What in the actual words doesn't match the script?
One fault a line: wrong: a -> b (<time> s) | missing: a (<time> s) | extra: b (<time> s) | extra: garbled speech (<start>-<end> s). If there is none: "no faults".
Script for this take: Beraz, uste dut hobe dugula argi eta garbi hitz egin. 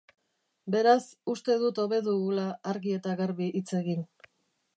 no faults